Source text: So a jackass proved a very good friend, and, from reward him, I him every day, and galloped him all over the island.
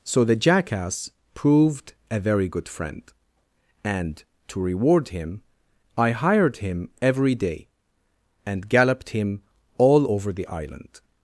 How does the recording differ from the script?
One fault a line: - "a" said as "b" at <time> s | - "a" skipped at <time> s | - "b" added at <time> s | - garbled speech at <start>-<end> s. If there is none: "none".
- "a" said as "the" at 0.2 s
- "from" said as "to" at 4.5 s
- "hired" added at 6.1 s